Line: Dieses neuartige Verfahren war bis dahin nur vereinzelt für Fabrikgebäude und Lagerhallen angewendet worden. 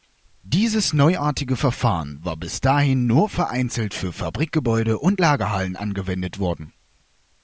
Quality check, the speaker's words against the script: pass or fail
pass